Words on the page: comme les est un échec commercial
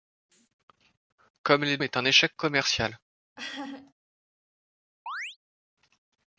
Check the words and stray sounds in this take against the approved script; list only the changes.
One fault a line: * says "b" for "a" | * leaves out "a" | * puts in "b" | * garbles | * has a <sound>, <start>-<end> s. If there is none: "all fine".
* has a laugh, 3.4-3.9 s
* has a chirp, 5.1-5.4 s